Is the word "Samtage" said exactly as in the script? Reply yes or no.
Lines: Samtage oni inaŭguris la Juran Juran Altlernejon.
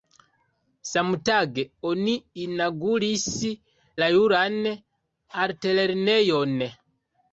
yes